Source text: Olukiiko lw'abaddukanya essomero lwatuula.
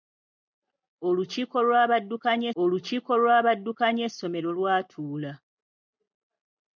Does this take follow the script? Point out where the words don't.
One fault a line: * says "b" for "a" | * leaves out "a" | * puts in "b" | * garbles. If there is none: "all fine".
* puts in "olukiiko lw'abaddukanya"